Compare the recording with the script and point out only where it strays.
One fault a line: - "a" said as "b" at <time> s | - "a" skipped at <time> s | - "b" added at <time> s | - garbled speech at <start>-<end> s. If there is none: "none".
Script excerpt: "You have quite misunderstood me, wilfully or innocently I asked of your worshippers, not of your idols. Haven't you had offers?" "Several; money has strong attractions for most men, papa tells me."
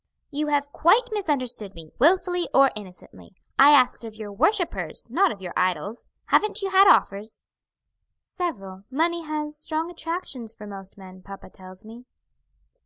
none